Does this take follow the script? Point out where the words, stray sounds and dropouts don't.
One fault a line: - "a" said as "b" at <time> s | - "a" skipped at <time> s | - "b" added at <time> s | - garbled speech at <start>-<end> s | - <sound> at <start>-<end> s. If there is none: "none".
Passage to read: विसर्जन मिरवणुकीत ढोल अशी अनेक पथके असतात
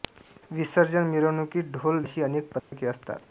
- dropout at 2.6-2.7 s